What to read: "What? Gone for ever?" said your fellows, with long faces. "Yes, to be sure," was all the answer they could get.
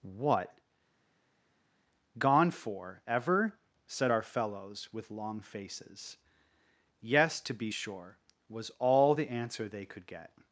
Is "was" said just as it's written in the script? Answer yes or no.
yes